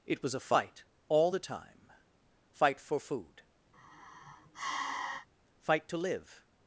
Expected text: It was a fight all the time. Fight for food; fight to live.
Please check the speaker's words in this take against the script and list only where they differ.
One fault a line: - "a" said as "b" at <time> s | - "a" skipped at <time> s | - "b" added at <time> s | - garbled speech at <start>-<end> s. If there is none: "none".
none